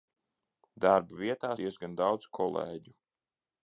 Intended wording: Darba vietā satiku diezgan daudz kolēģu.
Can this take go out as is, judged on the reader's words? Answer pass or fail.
fail